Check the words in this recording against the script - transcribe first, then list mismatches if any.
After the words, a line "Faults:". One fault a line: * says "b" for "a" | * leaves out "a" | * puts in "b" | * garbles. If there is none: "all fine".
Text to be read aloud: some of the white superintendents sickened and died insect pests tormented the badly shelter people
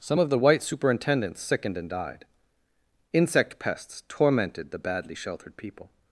some of the white superintendents sickened and died insect pests tormented the badly sheltered people
Faults:
* says "sheltered" for "shelter"